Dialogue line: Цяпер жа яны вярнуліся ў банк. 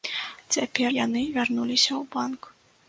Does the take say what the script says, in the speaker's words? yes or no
no